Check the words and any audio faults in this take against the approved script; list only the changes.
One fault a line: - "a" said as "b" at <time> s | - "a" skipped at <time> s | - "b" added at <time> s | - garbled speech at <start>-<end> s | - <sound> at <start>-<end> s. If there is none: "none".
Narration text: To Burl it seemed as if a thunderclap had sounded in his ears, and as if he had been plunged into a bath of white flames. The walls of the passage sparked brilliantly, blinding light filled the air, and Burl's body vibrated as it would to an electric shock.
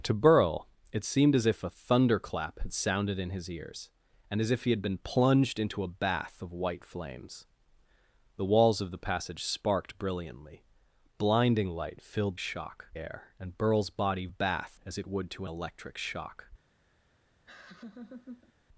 - "the" said as "shock" at 12.4 s
- "vibrated" said as "bath" at 14.3 s
- "an" skipped at 15.4 s
- laugh at 17.5-18.5 s